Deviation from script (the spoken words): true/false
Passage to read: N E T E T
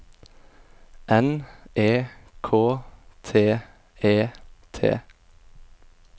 true